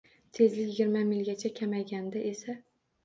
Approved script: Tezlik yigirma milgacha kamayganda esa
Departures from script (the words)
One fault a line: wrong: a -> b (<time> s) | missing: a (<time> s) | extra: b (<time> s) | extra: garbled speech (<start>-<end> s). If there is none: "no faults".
no faults